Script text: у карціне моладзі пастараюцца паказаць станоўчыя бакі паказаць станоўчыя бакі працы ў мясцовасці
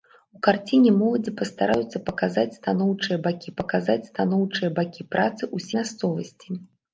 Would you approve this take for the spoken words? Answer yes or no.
yes